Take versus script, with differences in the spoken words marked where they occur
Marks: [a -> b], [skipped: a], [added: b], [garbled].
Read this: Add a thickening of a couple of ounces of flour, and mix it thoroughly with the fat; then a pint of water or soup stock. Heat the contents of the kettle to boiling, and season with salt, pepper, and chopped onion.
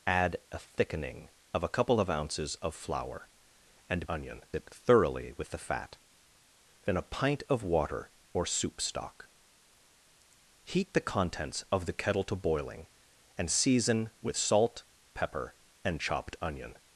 Add a thickening of a couple of ounces of flour, and [mix -> onion] it thoroughly with the fat; then a pint of water or soup stock. Heat the contents of the kettle to boiling, and season with salt, pepper, and chopped onion.